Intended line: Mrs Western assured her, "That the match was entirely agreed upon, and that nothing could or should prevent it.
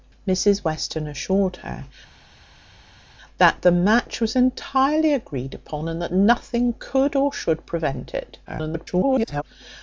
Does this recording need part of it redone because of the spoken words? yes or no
yes